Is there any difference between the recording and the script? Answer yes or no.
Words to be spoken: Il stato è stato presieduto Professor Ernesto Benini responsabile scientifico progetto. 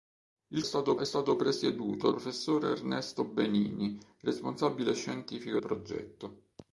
no